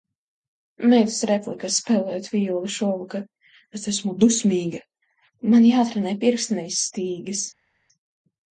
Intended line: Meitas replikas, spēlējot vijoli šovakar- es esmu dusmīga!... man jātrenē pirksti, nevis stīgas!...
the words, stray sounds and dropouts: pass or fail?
pass